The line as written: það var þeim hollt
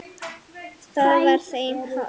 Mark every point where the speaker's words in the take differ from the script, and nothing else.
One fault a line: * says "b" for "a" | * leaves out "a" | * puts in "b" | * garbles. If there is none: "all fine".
all fine